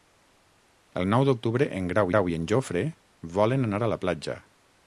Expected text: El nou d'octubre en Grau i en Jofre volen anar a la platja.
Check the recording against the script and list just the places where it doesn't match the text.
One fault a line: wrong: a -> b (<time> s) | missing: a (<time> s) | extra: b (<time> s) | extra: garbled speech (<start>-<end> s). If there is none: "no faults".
extra: Grau (2.1 s)